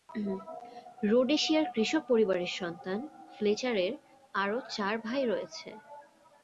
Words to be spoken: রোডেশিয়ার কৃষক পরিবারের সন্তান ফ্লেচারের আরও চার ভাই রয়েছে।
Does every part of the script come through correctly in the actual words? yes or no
yes